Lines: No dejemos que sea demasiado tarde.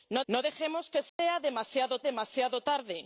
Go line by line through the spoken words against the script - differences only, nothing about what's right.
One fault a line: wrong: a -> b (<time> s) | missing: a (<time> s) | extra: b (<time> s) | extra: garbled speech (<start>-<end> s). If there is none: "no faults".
extra: no (0.3 s)
extra: demasiado (2.1 s)